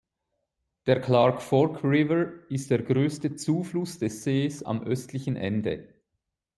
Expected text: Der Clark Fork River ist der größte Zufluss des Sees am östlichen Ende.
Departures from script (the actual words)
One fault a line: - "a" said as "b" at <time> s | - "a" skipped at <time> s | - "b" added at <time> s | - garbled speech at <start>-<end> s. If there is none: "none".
none